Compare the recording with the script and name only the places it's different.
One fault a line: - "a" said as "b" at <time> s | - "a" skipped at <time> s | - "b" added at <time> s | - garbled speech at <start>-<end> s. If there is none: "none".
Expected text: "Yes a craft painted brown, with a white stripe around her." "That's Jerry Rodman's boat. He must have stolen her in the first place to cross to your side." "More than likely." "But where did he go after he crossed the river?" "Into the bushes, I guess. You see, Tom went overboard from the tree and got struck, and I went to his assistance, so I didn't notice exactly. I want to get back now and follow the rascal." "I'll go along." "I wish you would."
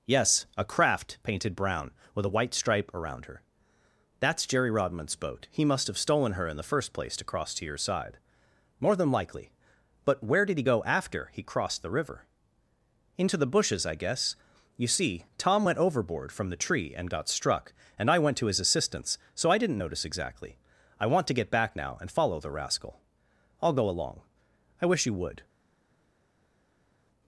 none